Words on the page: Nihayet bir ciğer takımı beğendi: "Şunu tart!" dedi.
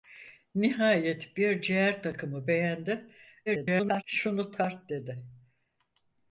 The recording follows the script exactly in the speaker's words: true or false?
false